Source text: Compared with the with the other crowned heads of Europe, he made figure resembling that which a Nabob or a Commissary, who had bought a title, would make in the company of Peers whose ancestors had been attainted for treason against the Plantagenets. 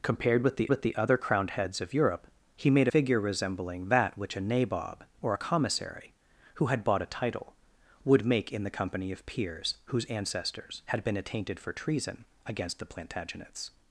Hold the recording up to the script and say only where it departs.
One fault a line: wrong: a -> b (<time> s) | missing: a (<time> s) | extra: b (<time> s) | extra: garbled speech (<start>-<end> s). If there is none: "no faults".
no faults